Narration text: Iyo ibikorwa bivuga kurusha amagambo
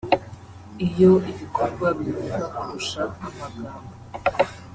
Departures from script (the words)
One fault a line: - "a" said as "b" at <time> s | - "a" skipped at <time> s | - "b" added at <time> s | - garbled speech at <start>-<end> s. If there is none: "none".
none